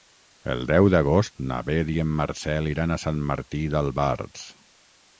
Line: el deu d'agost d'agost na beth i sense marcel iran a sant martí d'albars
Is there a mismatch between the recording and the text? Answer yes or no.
yes